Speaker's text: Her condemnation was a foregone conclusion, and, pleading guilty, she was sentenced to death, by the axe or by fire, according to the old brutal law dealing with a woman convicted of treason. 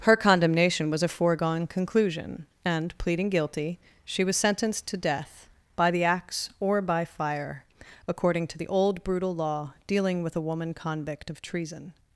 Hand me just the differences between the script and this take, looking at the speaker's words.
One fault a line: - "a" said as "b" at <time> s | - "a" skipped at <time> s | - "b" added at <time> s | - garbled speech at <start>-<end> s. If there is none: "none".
- "convicted" said as "convict" at 10.7 s